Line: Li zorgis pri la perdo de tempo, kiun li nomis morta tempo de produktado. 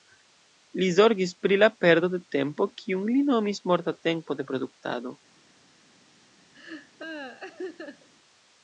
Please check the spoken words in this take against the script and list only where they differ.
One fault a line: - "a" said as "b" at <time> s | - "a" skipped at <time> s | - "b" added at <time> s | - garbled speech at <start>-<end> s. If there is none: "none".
none